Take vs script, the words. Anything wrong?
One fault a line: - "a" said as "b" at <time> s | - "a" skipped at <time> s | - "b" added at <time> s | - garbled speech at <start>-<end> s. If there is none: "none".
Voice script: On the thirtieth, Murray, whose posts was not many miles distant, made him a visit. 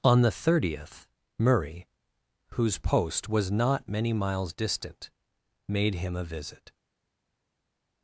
- "posts" said as "post" at 2.8 s